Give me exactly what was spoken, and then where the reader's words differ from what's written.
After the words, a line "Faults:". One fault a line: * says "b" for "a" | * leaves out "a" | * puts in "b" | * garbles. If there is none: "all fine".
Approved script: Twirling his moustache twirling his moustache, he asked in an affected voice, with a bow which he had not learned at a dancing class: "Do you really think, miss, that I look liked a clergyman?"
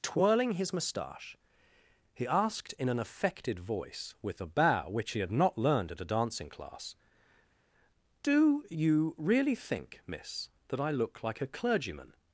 Twirling his moustache, he asked in an affected voice, with a bow which he had not learned at a dancing class: "Do you really think, miss, that I look like a clergyman?"
Faults:
* leaves out "twirling his moustache"
* says "like" for "liked"